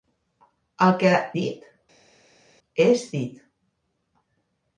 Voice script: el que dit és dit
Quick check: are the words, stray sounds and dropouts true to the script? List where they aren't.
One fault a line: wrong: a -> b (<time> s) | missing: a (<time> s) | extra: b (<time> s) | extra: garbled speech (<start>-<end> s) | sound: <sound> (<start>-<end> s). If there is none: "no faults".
no faults